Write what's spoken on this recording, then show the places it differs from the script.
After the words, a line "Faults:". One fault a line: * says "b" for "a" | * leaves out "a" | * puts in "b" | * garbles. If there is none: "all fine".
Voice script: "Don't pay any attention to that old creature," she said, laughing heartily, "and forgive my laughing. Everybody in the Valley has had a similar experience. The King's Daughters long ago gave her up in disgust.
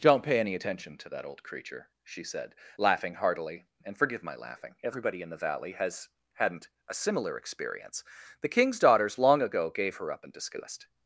"Don't pay any attention to that old creature," she said, laughing heartily, "and forgive my laughing. Everybody in the Valley has hadn't a similar experience. The King's Daughters long ago gave her up in disgust.
Faults:
* says "hadn't" for "had"